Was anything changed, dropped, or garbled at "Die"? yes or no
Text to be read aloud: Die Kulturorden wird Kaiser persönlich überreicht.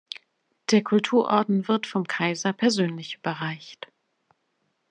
yes